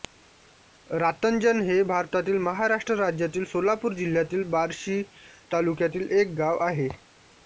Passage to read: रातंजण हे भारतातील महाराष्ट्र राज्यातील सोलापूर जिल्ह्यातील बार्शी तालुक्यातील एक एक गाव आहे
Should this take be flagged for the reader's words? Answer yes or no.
yes